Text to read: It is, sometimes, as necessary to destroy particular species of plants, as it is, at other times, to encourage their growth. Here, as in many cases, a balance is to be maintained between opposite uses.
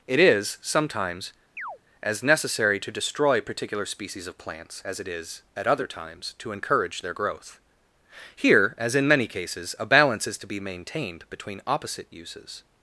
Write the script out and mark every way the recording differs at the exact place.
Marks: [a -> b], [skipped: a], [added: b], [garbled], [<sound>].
It is, sometimes, [chirp] as necessary to destroy particular species of plants, as it is, at other times, to encourage their growth. Here, as in many cases, a balance is to be maintained between opposite uses.